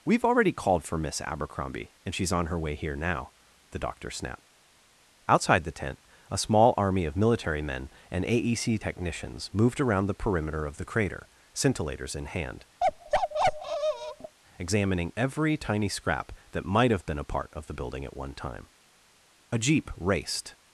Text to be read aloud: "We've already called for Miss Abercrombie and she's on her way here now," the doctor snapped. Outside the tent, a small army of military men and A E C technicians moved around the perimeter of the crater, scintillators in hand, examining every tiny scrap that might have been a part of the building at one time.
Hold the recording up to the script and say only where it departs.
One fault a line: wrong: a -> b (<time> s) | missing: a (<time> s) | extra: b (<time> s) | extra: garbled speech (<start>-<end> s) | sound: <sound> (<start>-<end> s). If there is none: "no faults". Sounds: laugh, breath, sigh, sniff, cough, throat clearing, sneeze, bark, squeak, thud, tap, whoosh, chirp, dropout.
sound: bark (12.8-14.4 s)
extra: A jeep raced (19.5 s)